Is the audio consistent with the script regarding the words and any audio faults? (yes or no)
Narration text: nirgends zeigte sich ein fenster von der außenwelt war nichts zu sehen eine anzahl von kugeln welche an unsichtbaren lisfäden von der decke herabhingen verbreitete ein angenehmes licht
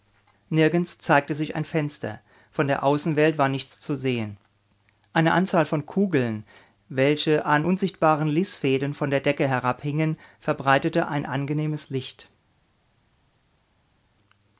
yes